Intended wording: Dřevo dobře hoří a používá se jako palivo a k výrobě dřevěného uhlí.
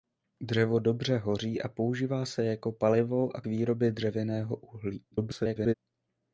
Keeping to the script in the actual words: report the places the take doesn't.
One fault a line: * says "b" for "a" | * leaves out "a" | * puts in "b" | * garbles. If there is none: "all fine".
* leaves out "k"
* garbles